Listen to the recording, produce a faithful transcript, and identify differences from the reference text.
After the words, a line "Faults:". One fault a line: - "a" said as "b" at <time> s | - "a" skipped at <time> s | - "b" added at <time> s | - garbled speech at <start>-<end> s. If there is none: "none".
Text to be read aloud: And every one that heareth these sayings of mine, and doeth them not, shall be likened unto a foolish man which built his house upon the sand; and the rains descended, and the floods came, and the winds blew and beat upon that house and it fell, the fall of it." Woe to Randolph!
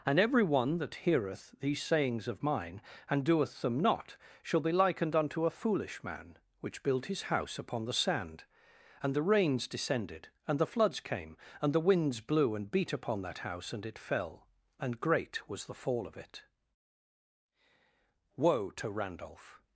And every one that heareth these sayings of mine, and doeth them not, shall be likened unto a foolish man which built his house upon the sand; and the rains descended, and the floods came, and the winds blew and beat upon that house and it fell, and great was the fall of it." Woe to Randolph!
Faults:
- "and great was" added at 14.8 s